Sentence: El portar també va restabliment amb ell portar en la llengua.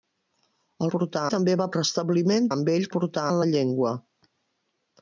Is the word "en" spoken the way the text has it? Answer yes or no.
yes